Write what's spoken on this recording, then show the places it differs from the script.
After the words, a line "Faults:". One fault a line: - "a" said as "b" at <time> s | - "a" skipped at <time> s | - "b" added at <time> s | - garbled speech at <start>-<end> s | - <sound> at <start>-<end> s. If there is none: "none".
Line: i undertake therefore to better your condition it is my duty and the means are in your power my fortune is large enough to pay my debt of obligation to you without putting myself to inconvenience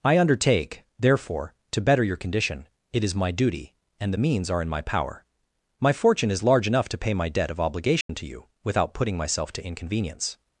i undertake therefore to better your condition it is my duty and the means are in my power my fortune is large enough to pay my debt of obligation to you without putting myself to inconvenience
Faults:
- "your" said as "my" at 4.7 s
- dropout at 8.0-8.1 s